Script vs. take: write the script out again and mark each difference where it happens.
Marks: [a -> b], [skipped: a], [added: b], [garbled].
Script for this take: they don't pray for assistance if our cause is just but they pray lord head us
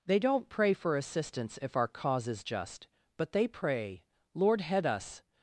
they don't pray for assistance if our cause is just but they pray lord head us